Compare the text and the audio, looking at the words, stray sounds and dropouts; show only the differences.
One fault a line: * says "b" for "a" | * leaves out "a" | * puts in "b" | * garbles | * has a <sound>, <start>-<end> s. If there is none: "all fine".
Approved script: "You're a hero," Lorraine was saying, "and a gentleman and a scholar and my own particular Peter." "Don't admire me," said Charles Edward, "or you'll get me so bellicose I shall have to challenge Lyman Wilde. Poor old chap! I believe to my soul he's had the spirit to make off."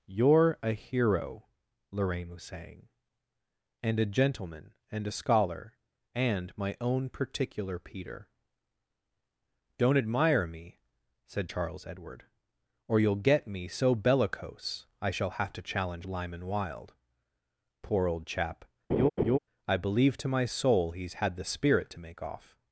* has a laugh, 18.9-19.4 s